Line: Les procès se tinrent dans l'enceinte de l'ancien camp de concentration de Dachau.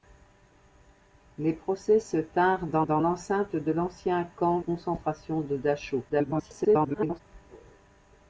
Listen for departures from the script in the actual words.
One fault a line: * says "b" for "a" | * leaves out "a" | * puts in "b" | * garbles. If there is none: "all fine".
* puts in "dans"
* leaves out "de"
* garbles